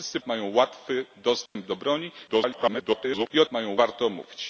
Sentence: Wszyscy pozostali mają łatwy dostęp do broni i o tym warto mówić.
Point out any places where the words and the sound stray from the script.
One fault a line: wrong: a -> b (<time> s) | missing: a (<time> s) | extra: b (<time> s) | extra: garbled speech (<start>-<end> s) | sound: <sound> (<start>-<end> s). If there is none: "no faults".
missing: pozostali (0.2 s)
sound: dropout (1.5-1.6 s)
extra: garbled speech (2.3-3.3 s)
wrong: tym -> mają (3.5 s)